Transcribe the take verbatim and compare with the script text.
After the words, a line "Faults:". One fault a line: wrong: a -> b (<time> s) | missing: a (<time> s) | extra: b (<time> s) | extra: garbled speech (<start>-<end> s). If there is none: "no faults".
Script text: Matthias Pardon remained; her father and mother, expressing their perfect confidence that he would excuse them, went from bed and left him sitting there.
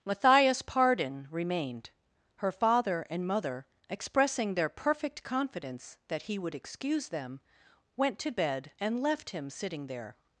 Matthias Pardon remained; her father and mother, expressing their perfect confidence that he would excuse them, went to bed and left him sitting there.
Faults:
wrong: from -> to (8.2 s)